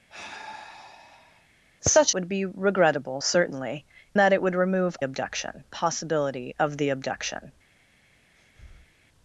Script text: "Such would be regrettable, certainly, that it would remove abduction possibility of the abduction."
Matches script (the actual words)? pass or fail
pass